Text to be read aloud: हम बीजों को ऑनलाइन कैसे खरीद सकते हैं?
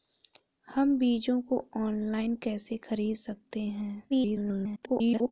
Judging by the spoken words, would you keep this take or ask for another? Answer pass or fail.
fail